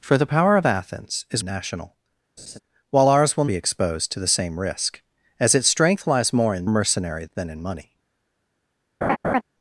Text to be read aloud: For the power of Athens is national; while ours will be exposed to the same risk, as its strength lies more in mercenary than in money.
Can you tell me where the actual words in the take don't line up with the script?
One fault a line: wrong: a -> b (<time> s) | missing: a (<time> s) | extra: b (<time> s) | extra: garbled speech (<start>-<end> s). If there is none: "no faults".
no faults